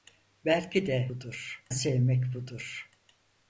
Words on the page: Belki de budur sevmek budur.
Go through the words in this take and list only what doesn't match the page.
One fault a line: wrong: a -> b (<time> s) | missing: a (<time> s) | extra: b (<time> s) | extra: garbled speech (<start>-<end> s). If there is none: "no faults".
no faults